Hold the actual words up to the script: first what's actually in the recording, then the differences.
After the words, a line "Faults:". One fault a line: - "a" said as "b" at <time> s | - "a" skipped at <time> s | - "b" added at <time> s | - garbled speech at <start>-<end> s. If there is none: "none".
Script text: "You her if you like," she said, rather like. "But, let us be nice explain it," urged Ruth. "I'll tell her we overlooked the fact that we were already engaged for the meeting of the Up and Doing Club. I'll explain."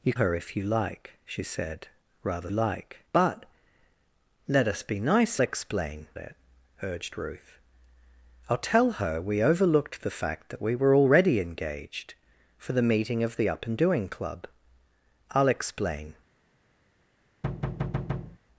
"You her if you like," she said, rather like. "But, let us be nice explain it," urged Ruth. "I'll tell her we overlooked the fact that we were already engaged for the meeting of the Up and Doing Club. I'll explain."
Faults:
none